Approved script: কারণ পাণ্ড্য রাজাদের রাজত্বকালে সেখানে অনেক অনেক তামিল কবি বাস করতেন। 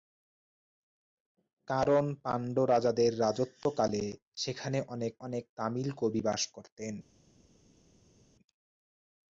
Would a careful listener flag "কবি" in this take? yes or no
no